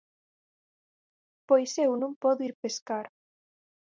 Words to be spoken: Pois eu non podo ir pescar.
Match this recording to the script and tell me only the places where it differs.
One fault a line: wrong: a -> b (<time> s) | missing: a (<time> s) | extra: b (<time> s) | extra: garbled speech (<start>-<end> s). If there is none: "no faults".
no faults